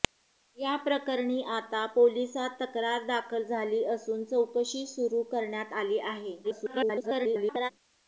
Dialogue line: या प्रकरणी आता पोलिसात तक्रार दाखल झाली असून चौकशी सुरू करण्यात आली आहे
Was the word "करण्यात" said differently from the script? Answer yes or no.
no